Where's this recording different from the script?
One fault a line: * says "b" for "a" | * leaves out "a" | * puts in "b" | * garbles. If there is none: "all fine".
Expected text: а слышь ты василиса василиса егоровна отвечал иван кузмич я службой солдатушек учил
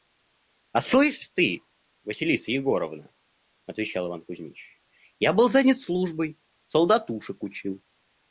* leaves out "василиса"
* puts in "был занят"